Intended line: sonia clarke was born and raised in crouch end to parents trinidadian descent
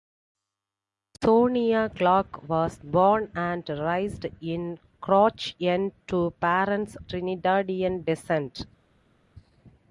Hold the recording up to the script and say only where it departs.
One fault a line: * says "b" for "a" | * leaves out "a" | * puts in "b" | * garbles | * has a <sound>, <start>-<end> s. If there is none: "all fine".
all fine